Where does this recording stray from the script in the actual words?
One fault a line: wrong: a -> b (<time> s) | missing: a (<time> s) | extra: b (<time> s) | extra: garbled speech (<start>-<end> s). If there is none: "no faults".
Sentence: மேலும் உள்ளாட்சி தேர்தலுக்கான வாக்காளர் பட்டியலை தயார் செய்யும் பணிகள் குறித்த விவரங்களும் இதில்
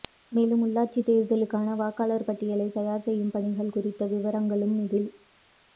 no faults